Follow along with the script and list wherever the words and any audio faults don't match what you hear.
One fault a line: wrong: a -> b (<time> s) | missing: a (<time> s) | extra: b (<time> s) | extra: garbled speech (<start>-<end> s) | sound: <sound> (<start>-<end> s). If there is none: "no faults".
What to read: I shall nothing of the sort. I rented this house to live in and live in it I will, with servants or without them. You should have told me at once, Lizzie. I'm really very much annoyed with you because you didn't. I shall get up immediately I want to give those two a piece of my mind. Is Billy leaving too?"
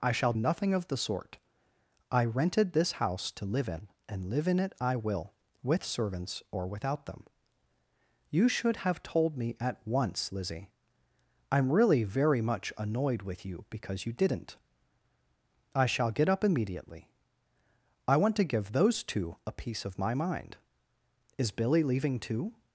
no faults